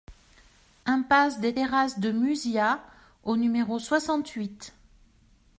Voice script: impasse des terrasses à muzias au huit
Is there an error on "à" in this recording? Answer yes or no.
yes